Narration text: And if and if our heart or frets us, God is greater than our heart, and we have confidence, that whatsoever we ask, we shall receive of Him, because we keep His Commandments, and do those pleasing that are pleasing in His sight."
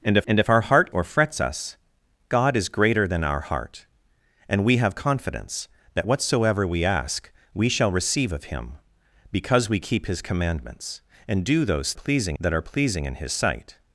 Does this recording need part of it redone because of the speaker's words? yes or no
no